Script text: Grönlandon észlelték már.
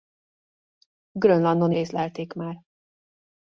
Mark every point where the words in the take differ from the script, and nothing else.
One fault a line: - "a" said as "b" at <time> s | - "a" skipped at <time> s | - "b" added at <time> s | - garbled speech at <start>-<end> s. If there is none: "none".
none